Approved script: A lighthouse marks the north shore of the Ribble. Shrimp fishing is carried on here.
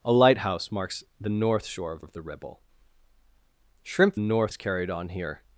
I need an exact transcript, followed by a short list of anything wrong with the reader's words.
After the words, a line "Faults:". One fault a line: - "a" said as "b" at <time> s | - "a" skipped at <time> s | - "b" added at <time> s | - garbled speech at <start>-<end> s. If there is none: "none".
A lighthouse marks the north shore of of the Ribble. Shrimp north is carried on here.
Faults:
- "of" added at 2.0 s
- "fishing" said as "north" at 4.2 s